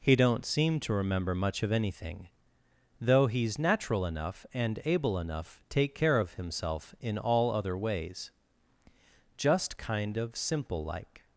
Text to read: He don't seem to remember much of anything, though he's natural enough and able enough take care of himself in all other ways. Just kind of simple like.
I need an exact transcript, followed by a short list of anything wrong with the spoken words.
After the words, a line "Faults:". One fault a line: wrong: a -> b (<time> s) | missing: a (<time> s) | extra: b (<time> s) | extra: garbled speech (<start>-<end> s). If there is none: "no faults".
He don't seem to remember much of anything, though he's natural enough and able enough take care of himself in all other ways. Just kind of simple like.
Faults:
no faults